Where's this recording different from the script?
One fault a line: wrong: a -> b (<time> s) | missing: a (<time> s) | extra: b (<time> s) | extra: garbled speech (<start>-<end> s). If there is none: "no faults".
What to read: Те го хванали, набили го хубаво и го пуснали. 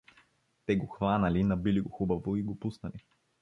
no faults